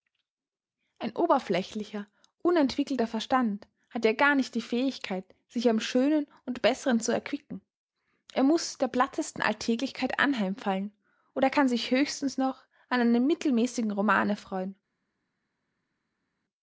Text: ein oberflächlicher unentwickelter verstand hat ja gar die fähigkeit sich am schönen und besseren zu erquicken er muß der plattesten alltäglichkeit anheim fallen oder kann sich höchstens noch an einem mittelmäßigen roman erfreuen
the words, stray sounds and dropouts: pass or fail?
fail